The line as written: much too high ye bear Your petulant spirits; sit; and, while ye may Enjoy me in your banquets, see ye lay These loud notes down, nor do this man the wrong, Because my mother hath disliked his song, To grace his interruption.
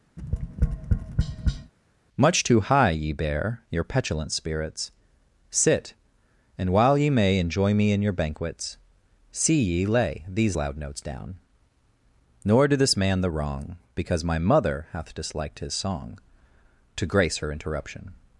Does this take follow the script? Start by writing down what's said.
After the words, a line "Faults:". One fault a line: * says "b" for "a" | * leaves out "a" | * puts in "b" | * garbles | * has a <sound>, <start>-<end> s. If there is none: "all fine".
much too high ye bear Your petulant spirits; sit; and, while ye may Enjoy me in your banquets, see ye lay These loud notes down, nor do this man the wrong, Because my mother hath disliked his song, To grace her interruption.
Faults:
* has a tap, 0.2-1.7 s
* says "her" for "his"